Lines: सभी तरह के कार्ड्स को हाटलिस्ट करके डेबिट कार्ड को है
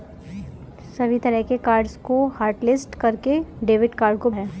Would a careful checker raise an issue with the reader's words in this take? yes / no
no